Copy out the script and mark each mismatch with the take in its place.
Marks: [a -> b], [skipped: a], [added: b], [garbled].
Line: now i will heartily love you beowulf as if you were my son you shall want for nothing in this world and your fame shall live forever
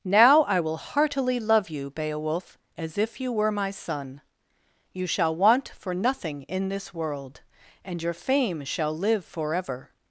now i will heartily love you beowulf as if you were my son you shall want for nothing in this world and your fame shall live forever